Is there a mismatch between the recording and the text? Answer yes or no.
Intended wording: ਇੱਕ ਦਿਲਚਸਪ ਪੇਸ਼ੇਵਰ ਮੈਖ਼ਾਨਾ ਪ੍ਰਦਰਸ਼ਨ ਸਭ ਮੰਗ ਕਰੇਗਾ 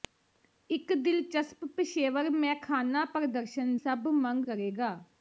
no